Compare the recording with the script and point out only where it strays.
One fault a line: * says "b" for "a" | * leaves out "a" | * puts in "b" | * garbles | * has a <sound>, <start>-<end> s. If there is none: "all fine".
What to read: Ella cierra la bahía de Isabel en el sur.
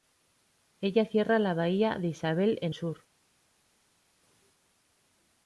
* leaves out "el"